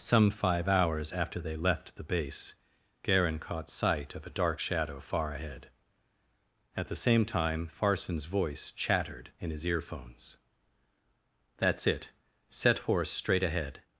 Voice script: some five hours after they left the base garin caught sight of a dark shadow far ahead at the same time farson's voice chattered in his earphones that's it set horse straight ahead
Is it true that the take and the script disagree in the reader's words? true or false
false